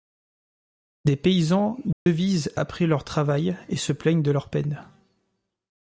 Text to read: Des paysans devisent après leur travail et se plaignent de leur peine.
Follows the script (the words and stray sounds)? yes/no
no